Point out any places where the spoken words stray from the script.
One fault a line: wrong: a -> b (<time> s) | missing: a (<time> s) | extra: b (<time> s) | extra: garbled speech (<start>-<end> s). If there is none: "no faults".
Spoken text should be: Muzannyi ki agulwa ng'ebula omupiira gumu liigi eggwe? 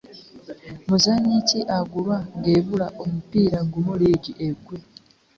no faults